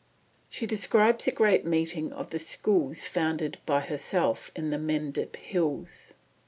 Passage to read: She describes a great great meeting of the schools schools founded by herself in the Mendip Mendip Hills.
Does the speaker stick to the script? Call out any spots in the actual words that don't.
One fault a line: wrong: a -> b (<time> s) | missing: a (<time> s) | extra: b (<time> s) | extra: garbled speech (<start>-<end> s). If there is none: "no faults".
missing: great (1.6 s)
missing: schools (3.0 s)
missing: Mendip (5.3 s)